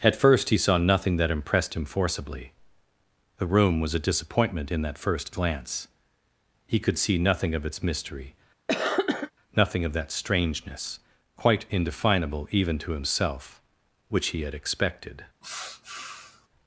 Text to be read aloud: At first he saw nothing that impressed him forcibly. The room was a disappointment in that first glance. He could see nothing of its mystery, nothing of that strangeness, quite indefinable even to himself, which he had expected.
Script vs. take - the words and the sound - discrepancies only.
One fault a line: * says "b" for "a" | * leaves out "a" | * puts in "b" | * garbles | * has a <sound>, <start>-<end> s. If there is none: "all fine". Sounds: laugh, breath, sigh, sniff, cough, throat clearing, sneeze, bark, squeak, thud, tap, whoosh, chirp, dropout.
* has a cough, 8.7-9.3 s
* has a sniff, 15.4-16.5 s